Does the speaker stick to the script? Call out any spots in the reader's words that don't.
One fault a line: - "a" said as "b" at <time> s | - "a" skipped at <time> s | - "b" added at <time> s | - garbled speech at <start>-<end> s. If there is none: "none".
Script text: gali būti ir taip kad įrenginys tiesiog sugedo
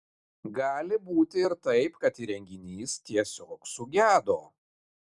none